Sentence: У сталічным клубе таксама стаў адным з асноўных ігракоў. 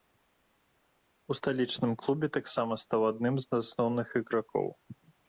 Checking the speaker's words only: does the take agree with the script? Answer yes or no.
yes